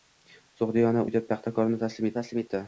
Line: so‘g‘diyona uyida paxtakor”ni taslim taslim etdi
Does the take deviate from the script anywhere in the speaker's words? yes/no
no